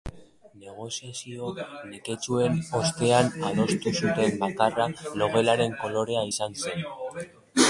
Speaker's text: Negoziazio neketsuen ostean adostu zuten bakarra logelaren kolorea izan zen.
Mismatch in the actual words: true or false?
false